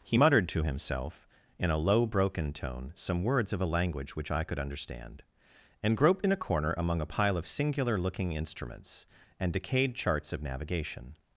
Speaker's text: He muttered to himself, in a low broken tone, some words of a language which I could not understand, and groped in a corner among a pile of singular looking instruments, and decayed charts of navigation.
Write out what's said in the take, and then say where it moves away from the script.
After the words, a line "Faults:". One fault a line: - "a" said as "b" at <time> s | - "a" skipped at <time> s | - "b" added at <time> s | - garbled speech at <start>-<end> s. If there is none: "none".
He muttered to himself, in a low broken tone, some words of a language which I could understand, and groped in a corner among a pile of singular looking instruments, and decayed charts of navigation.
Faults:
- "not" skipped at 4.6 s